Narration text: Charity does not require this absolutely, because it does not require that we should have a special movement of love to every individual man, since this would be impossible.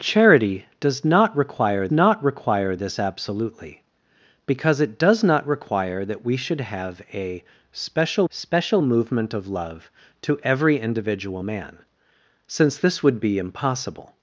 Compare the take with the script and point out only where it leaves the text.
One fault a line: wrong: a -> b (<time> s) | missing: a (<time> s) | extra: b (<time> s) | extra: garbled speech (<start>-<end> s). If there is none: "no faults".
extra: not require (1.9 s)
extra: special (8.3 s)